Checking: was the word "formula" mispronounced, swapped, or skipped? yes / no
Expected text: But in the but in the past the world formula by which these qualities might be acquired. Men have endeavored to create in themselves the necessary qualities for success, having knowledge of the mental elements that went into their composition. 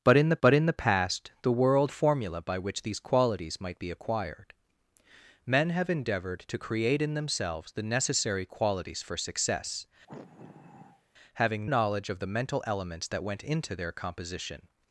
no